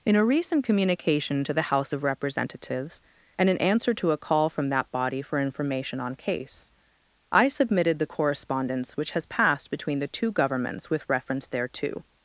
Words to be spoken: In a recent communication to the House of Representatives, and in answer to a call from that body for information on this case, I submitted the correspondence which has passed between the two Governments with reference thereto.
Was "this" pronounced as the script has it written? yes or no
no